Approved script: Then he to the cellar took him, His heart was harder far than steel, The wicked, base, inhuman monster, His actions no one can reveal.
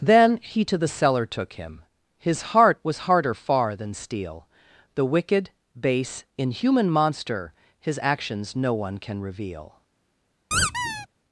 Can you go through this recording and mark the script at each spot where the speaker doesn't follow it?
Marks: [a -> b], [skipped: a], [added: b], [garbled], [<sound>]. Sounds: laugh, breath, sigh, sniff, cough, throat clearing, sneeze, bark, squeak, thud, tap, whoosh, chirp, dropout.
Then he to the cellar took him, His heart was harder far than steel, The wicked, base, inhuman monster, His actions no one can reveal. [squeak]